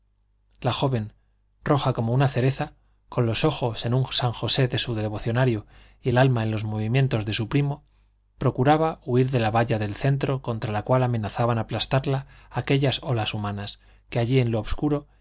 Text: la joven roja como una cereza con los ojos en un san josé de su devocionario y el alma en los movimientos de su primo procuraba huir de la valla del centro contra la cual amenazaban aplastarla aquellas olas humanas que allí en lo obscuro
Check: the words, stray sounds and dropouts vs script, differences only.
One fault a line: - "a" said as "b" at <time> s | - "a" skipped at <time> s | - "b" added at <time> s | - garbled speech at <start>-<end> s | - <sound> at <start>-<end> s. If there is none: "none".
none